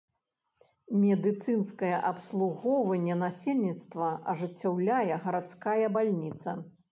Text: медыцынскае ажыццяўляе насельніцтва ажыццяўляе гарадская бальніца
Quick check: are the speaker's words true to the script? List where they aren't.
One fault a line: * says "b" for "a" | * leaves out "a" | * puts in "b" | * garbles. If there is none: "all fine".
* says "абслугоўванне" for "ажыццяўляе"